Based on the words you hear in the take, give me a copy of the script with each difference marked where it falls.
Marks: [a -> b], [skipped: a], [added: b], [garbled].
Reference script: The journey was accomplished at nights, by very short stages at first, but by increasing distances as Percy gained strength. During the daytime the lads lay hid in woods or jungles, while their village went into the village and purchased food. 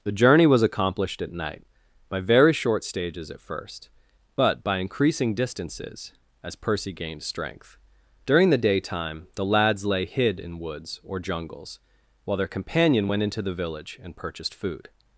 The journey was accomplished at [nights, -> night] by very short stages at first, but by increasing distances as Percy gained strength. During the daytime the lads lay hid in woods or jungles, while their [village -> companion] went into the village and purchased food.